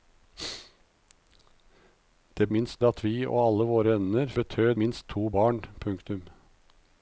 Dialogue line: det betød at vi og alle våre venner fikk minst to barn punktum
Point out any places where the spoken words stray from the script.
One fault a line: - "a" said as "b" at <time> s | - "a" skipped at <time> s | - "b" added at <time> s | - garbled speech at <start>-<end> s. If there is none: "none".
- "betød" said as "minst" at 2.5 s
- "fikk" said as "betød" at 4.3 s